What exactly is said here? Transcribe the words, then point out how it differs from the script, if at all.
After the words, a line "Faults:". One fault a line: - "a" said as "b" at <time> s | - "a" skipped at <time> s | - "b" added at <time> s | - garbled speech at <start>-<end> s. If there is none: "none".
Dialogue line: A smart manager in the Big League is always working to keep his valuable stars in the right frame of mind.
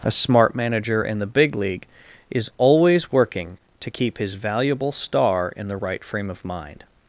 A smart manager in the Big League is always working to keep his valuable star in the right frame of mind.
Faults:
- "stars" said as "star" at 4.9 s